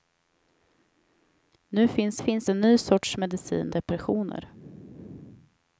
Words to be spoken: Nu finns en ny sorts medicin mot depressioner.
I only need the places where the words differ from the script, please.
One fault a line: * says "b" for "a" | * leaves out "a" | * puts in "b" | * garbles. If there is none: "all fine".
* puts in "finns"
* leaves out "mot"